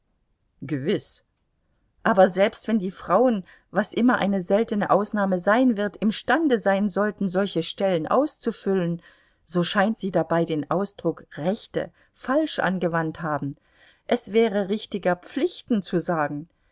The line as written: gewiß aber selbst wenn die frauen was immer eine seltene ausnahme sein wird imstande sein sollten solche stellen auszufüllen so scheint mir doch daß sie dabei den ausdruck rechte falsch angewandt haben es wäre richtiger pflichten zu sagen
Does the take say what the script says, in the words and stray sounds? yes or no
no